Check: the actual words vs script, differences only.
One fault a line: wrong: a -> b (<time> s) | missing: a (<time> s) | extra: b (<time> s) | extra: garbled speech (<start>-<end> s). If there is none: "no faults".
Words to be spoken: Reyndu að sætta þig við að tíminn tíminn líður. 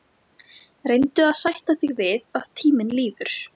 missing: tíminn (2.9 s)